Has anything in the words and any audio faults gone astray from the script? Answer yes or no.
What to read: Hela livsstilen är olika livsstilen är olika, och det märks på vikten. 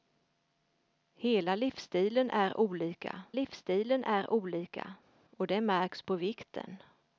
no